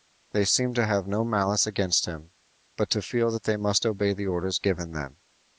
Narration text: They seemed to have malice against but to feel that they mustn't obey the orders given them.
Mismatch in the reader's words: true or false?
true